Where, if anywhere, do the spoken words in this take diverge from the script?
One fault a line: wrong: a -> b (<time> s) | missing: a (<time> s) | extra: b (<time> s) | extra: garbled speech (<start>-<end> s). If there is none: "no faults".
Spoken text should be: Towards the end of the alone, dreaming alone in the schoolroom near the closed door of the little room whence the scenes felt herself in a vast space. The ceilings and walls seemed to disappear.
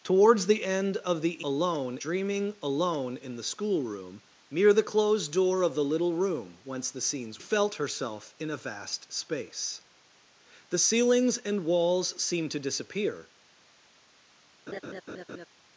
no faults